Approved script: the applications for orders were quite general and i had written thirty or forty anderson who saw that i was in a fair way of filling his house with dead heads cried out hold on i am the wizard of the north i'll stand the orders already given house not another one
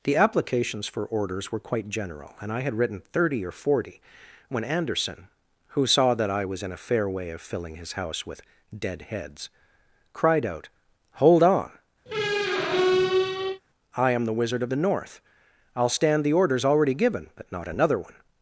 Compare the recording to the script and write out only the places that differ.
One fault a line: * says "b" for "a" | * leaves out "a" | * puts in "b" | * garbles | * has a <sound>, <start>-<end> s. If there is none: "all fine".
* puts in "when"
* has a squeak, 12.1-13.6 s
* says "but" for "house"